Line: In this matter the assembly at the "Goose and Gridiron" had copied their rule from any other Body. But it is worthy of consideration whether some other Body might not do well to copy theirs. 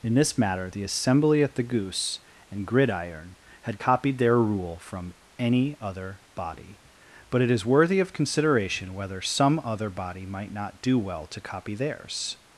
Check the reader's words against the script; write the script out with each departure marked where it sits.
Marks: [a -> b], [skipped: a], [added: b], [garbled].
In this matter the assembly at the "Goose and Gridiron" had copied their rule from any other Body. But it is worthy of consideration whether some other Body might not do well to copy theirs.